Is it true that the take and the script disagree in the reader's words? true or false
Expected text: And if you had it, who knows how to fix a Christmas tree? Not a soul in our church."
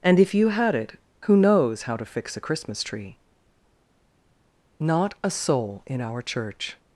false